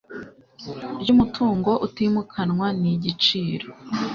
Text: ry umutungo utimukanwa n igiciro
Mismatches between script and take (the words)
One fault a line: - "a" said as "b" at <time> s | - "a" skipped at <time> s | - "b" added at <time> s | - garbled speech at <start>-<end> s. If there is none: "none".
none